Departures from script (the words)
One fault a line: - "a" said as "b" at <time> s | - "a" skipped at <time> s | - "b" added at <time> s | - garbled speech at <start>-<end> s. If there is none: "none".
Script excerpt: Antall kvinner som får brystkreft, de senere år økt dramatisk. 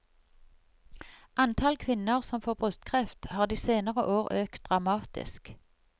- "har" added at 3.2 s